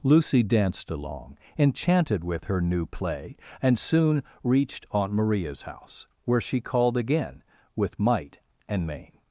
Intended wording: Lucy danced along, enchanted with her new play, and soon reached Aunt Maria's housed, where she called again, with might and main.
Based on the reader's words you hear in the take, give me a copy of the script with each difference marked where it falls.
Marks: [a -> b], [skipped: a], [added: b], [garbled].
Lucy danced along, enchanted with her new play, and soon reached Aunt Maria's [housed, -> house] where she called again, with might and main.